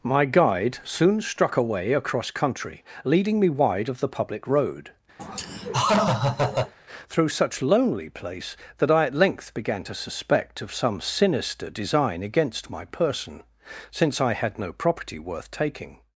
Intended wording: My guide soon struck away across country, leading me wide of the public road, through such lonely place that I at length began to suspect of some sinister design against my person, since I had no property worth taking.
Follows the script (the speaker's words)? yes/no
yes